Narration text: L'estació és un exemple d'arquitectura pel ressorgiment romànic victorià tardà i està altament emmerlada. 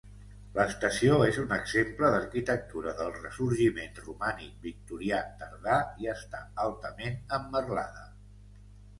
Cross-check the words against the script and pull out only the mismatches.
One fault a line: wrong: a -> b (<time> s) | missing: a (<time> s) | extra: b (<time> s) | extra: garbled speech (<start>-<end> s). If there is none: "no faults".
wrong: pel -> del (3.0 s)